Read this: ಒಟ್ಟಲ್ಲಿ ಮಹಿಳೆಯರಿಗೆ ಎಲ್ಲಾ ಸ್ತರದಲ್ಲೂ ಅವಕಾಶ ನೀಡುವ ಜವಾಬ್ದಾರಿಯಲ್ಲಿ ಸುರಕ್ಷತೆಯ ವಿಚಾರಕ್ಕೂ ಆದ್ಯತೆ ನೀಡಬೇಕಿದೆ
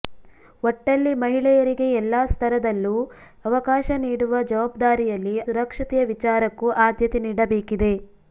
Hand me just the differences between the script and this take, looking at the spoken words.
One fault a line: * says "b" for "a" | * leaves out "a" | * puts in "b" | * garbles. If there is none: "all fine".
all fine